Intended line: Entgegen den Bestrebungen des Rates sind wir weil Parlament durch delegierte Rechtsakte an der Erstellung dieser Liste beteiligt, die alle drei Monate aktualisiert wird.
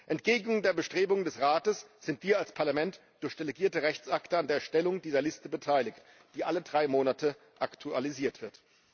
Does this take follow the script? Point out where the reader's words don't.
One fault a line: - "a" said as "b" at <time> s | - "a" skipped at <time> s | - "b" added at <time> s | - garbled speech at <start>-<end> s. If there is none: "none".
- "weil" said as "als" at 2.4 s